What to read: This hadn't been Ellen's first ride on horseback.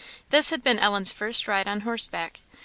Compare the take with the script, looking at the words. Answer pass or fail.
fail